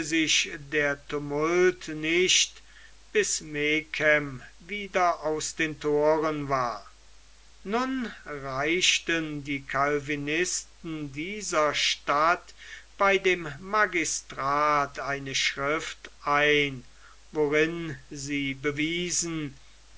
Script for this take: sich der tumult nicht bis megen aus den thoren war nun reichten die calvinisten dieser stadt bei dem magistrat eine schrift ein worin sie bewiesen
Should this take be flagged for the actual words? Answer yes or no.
yes